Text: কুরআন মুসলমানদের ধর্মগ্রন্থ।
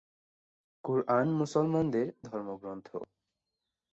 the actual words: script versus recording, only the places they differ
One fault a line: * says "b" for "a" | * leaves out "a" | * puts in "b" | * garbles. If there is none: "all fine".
all fine